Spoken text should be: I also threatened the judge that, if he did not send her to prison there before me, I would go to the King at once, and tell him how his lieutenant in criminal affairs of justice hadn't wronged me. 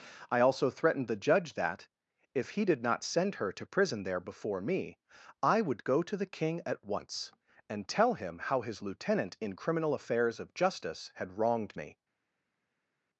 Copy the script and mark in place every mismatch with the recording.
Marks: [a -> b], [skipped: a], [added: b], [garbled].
I also threatened the judge that, if he did not send her to prison there before me, I would go to the King at once, and tell him how his lieutenant in criminal affairs of justice [hadn't -> had] wronged me.